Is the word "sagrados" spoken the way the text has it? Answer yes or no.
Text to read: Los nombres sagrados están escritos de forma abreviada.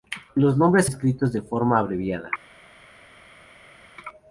no